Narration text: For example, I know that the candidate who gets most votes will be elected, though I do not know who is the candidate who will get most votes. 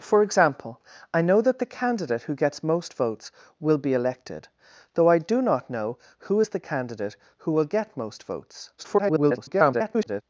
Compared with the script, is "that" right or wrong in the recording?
right